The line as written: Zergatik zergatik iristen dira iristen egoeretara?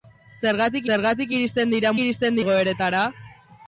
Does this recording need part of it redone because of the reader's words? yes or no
no